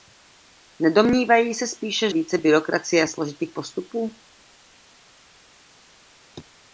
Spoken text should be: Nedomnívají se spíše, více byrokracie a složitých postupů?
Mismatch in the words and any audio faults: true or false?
false